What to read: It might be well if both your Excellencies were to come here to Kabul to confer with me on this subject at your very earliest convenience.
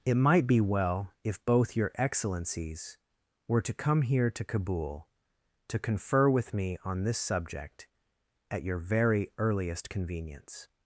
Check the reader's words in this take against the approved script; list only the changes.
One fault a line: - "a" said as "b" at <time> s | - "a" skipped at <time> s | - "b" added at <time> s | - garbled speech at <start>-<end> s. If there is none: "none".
none